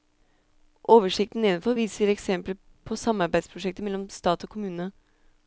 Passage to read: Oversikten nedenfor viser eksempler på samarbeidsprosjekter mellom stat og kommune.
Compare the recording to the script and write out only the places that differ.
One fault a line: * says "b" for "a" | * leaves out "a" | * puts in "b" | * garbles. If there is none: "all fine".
all fine